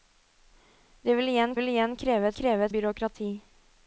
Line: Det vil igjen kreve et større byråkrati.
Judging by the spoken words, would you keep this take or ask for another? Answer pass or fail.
fail